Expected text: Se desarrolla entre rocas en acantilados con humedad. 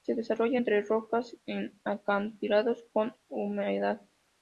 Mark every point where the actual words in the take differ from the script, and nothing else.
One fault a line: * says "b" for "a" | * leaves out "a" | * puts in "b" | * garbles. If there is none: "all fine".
all fine